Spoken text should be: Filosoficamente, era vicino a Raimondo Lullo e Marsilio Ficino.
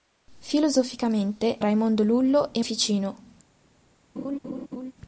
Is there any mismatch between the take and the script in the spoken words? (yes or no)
yes